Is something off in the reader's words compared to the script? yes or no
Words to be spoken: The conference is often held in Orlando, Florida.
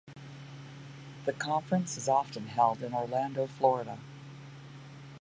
no